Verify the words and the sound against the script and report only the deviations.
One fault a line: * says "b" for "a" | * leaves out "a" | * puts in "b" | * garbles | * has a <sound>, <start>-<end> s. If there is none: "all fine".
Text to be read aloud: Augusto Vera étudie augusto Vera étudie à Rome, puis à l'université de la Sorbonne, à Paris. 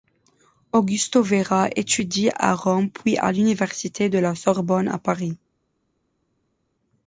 * leaves out "augusto Vera étudie"